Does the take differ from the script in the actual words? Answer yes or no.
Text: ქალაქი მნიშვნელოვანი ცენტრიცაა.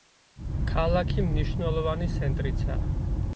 no